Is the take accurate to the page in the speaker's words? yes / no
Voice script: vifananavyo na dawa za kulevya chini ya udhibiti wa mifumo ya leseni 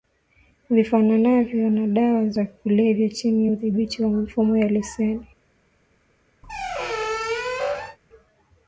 yes